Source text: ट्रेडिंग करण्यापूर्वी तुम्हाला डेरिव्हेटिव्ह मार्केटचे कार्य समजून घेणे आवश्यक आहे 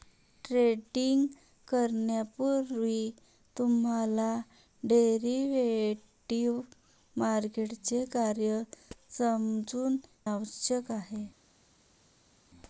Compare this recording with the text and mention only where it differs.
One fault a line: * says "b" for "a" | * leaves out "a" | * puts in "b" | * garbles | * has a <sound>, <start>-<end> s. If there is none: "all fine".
* leaves out "घेणे"